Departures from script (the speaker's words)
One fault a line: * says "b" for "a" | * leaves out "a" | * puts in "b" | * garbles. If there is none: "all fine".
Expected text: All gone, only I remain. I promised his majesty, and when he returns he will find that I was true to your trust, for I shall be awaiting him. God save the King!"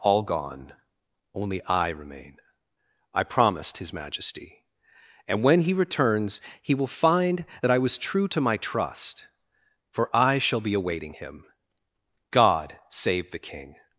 * says "my" for "your"